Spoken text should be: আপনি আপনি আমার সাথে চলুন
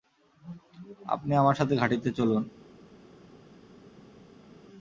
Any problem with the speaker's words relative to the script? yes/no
yes